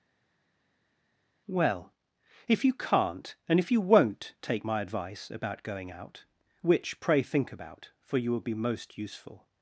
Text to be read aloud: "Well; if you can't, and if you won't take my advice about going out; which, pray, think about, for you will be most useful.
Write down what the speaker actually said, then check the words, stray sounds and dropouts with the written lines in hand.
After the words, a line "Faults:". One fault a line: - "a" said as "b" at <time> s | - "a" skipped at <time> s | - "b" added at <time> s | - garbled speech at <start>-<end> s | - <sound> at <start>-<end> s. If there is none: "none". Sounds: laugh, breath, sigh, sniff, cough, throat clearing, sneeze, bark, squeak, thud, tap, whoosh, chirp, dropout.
"Well; if you can't, and if you won't take my advice about going out; which, pray, think about, for you will be most useful.
Faults:
none